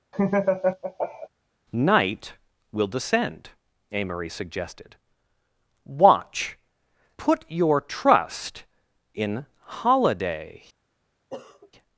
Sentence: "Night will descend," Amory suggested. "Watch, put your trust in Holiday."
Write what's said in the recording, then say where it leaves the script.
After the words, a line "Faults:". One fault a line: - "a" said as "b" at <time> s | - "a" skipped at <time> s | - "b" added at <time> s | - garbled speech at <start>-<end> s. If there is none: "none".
"Night will descend," Amory suggested. "Watch, put your trust in Holiday."
Faults:
none